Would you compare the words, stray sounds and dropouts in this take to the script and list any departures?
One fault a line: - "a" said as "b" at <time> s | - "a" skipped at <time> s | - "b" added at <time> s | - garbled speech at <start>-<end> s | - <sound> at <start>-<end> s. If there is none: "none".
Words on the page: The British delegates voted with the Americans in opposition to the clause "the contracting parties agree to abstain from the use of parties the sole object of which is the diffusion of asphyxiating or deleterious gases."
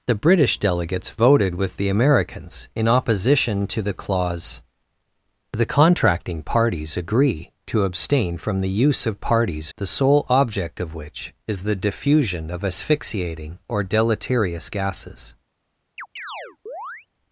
- chirp at 16.0-17.1 s